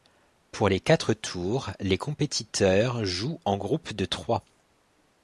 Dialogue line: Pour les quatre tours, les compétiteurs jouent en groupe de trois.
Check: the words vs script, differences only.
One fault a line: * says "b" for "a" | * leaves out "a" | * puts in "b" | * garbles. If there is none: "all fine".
all fine